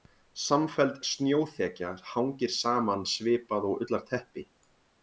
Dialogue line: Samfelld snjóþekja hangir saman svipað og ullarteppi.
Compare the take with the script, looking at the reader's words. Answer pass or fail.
pass